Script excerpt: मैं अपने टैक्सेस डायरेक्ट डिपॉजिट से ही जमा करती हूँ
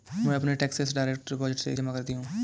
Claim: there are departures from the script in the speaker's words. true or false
true